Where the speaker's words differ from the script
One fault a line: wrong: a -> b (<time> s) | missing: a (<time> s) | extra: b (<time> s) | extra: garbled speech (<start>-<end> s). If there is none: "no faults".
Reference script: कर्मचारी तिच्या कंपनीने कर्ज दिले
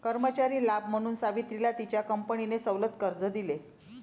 extra: लाभ म्हणून सावित्रीला (0.7 s)
extra: सवलत (2.6 s)